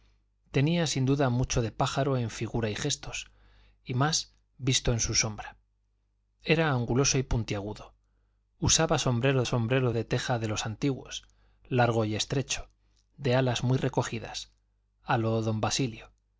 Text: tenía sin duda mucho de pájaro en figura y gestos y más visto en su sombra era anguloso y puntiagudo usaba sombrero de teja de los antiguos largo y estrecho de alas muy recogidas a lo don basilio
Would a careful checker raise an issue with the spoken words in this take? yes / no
yes